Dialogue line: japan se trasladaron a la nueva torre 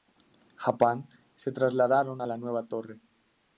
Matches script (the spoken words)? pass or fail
pass